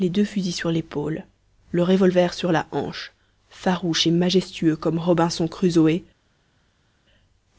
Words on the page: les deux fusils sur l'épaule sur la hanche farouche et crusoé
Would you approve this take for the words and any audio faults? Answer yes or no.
no